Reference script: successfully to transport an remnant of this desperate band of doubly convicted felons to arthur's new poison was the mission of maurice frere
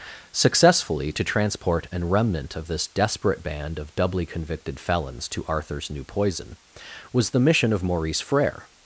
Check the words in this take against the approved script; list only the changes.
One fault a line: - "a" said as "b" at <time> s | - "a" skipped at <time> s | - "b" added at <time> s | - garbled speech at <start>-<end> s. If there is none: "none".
none